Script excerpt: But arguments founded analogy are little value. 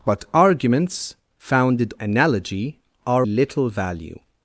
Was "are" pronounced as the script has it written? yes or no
yes